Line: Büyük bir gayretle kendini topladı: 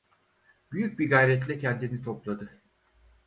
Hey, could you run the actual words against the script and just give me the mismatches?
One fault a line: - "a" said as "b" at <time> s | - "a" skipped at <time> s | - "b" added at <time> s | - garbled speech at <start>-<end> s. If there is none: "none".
none